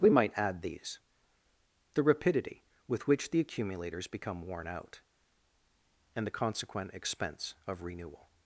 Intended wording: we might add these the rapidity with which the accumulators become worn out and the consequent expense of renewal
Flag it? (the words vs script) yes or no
no